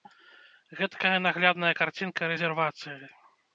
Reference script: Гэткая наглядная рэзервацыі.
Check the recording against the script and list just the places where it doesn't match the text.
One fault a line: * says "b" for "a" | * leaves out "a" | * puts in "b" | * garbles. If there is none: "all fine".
* puts in "карцінка"